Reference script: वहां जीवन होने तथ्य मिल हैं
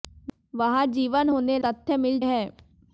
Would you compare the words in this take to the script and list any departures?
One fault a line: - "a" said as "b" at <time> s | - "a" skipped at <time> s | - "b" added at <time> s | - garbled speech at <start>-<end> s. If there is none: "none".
none